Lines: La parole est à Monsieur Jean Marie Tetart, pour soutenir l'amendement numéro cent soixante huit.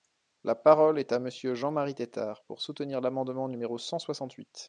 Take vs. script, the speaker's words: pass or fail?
pass